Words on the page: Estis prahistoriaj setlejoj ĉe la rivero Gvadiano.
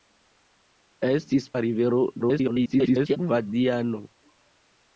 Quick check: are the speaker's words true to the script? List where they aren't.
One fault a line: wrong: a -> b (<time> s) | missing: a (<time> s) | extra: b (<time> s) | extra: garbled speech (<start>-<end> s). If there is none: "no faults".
missing: prahistoriaj setlejoj ĉe (1.4 s)
extra: garbled speech (2.2-3.2 s)